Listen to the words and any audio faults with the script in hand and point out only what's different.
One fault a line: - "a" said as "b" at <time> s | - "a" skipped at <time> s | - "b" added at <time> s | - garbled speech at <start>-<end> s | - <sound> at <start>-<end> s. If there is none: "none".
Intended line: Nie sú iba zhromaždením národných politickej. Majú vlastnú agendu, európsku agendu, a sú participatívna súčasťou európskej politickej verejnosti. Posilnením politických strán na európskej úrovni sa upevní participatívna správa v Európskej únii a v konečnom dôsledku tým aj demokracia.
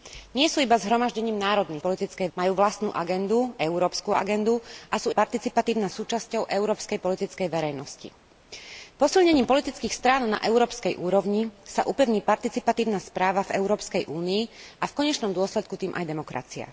none